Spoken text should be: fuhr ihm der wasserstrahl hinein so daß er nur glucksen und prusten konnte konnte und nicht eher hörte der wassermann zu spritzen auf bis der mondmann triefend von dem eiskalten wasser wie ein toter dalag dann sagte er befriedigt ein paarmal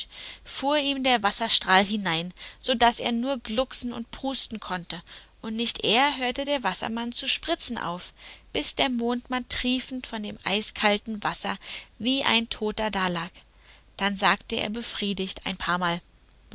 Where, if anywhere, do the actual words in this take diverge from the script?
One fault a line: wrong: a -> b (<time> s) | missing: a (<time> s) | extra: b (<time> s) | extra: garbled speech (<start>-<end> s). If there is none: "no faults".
missing: konnte (5.0 s)